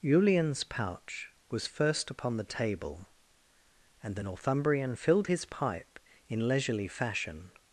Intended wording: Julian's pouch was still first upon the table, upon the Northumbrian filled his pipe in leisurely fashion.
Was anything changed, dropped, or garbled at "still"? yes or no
yes